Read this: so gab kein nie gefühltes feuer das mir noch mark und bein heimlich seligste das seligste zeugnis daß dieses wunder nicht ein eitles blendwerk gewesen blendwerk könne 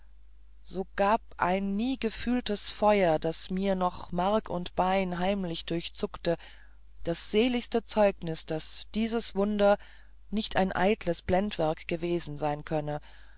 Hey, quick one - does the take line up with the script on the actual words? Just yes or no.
no